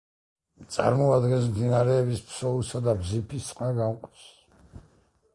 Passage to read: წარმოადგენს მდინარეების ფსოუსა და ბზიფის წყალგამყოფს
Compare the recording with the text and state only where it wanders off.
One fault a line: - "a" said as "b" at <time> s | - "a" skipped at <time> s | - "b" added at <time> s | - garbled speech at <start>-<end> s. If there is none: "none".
none